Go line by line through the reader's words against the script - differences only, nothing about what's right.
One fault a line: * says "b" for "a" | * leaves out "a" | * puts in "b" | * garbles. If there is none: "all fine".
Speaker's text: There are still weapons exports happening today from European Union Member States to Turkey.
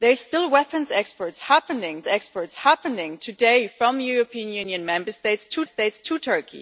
* puts in "exports happening"
* puts in "States to"